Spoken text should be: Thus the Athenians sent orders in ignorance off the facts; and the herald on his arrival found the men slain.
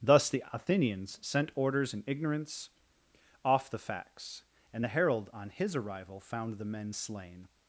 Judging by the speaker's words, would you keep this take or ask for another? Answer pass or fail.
pass